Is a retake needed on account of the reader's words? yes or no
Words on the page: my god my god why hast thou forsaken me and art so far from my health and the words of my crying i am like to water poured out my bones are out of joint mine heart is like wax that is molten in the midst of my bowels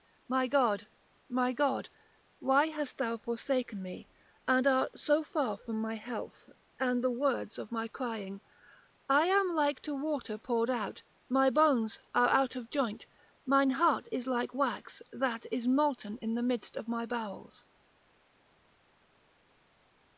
no